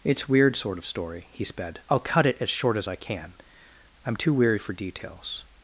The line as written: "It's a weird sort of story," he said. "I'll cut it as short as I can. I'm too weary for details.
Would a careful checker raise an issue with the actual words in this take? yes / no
yes